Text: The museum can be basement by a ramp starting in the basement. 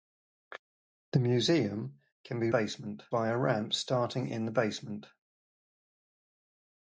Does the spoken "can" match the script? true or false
true